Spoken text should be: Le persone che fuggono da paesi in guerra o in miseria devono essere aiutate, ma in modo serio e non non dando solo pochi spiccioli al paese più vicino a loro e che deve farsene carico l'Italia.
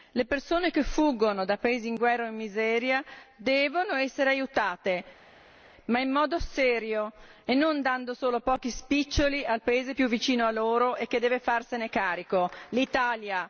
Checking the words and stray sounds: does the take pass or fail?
fail